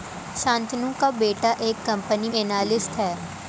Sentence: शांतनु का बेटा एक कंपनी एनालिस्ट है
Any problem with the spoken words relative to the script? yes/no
no